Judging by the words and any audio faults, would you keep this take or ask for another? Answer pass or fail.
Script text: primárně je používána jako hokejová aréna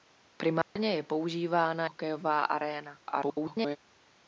fail